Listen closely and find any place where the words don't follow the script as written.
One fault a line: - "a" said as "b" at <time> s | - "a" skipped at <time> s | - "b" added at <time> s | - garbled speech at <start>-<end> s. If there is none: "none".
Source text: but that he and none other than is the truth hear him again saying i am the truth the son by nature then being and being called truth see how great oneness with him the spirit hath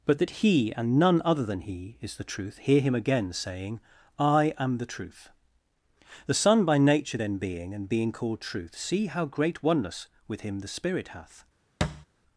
- "he" added at 1.6 s